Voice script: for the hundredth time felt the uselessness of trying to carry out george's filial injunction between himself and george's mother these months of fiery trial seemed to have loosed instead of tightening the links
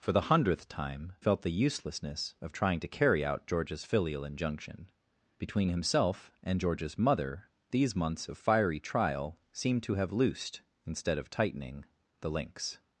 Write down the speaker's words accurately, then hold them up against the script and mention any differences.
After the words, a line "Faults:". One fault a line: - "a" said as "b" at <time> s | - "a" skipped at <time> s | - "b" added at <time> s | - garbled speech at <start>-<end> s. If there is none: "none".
for the hundredth time felt the uselessness of trying to carry out george's filial injunction between himself and george's mother these months of fiery trial seemed to have loosed instead of tightening the links
Faults:
none